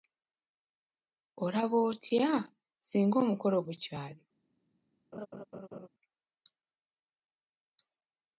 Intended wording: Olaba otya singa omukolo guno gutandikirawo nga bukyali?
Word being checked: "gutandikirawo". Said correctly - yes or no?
no